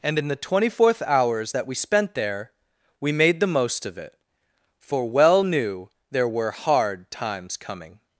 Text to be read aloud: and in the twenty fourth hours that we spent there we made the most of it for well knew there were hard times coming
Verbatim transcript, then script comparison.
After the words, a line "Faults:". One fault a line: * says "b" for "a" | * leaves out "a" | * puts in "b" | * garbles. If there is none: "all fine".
and in the twenty fourth hours that we spent there we made the most of it for well knew there were hard times coming
Faults:
all fine